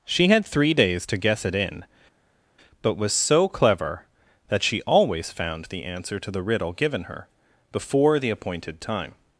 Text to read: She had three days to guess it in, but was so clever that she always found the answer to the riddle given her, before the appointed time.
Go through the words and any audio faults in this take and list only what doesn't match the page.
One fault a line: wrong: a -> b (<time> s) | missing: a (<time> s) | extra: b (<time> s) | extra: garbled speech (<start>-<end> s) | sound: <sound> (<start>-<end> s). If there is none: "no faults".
no faults